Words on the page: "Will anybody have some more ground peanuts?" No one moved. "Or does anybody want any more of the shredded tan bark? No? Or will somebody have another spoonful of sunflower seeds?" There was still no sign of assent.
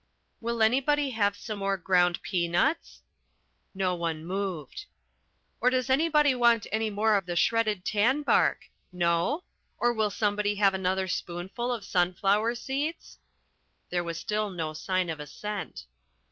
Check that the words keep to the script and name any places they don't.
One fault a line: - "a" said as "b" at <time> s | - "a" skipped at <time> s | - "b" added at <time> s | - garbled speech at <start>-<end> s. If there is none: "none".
none